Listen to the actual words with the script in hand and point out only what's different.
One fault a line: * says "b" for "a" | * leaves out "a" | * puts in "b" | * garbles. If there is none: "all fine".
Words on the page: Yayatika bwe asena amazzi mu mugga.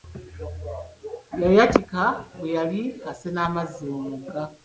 * puts in "yali"